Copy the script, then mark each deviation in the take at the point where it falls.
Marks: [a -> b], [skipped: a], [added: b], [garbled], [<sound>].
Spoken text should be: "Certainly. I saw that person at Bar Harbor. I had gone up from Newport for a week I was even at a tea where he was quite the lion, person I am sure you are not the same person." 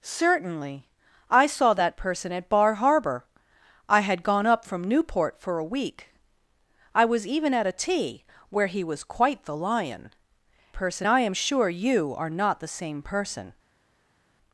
"Certainly. I saw that person at Bar Harbor. I had gone up from Newport for a week I was even at a tea where he was quite the lion, person I am sure you are not the same person."